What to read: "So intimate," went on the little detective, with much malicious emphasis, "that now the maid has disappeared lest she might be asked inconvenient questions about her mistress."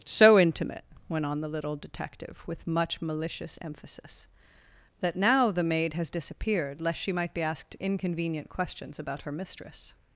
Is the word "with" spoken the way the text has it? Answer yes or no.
yes